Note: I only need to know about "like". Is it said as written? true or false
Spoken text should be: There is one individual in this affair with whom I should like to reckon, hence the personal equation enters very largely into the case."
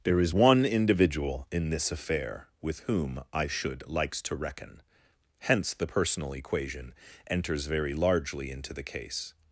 false